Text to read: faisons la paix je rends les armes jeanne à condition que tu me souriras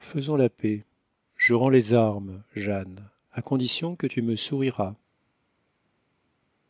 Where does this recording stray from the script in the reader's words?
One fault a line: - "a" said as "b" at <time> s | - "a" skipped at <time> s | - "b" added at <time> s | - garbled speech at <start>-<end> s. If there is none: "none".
none